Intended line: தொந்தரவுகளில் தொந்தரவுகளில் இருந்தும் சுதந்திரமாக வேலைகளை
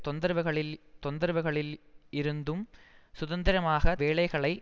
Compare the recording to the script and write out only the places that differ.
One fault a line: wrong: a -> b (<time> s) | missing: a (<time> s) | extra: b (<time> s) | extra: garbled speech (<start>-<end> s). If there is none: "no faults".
no faults